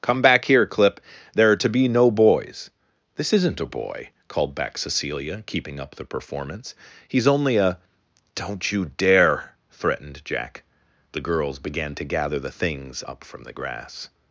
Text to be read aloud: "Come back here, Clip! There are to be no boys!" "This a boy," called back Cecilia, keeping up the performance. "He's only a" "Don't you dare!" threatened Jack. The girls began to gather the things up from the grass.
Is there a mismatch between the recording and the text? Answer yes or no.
yes